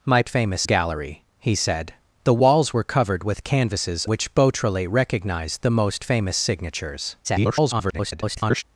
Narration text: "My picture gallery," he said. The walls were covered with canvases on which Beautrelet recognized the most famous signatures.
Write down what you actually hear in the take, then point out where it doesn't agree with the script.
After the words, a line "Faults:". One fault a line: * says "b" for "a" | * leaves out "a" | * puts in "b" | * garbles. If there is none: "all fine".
"My famous gallery," he said. The walls were covered with canvases which Beautrelet recognized the most famous signatures. [garbled]
Faults:
* says "famous" for "picture"
* leaves out "on"
* garbles